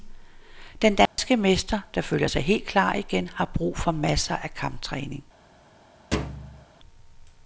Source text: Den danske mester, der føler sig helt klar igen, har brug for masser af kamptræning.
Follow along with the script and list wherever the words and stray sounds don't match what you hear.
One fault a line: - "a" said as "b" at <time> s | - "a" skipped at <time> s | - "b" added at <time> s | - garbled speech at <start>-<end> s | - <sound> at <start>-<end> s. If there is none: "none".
- dropout at 1.1-1.2 s
- thud at 6.1-6.7 s